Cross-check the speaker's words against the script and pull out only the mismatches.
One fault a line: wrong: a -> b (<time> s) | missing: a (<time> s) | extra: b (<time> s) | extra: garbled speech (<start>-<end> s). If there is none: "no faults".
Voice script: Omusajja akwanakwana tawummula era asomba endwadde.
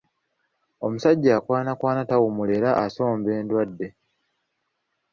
no faults